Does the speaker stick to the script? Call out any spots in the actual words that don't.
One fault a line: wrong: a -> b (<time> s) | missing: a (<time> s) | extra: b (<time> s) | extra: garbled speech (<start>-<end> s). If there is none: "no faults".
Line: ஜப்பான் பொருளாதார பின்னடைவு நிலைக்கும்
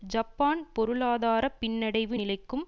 no faults